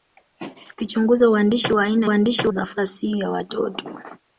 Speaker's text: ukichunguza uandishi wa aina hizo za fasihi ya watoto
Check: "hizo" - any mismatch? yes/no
yes